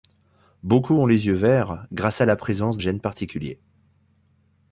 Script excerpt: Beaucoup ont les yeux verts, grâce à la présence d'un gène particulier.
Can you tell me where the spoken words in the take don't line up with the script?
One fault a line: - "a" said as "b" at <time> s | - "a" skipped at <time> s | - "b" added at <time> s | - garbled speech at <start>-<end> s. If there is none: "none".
- "d'un" skipped at 2.8 s